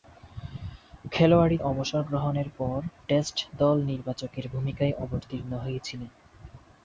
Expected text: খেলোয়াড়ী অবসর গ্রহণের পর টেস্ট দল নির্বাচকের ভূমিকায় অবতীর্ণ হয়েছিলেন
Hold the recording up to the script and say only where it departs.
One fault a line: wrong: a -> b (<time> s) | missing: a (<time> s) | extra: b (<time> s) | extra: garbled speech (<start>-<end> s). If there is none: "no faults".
no faults